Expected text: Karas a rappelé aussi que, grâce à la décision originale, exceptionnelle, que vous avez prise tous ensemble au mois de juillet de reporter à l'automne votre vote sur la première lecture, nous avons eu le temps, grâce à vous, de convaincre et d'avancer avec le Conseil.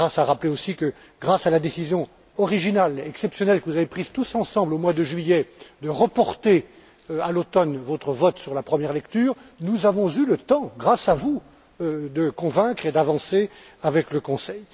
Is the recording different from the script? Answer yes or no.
no